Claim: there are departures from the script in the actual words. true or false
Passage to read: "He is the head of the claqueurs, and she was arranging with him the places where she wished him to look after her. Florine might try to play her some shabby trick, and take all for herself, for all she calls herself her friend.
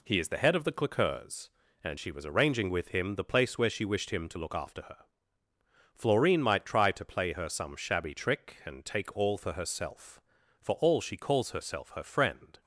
true